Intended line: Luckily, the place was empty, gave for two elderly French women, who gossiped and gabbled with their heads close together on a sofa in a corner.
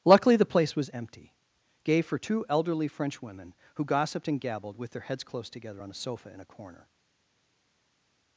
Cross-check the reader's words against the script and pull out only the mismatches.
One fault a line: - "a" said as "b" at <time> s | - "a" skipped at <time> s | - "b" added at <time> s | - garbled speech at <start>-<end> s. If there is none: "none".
none